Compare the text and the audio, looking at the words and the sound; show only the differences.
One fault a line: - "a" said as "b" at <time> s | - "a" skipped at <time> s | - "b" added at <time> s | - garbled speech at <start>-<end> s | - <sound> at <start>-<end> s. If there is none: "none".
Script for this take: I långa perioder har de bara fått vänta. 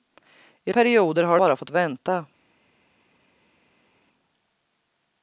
- "långa" skipped at 0.7 s
- "de" skipped at 1.4 s